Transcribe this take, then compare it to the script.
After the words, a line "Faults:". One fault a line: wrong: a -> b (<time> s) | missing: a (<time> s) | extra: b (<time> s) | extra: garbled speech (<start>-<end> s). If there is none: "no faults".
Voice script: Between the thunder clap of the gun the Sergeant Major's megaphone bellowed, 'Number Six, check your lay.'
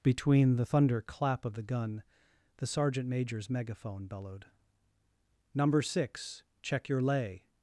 Between the thunder clap of the gun the Sergeant Major's megaphone bellowed, 'Number Six, check your lay.'
Faults:
no faults